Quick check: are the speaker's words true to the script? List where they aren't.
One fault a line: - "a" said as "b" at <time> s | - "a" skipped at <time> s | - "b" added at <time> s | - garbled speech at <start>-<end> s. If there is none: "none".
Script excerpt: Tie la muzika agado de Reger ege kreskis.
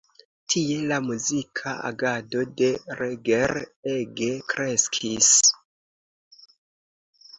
none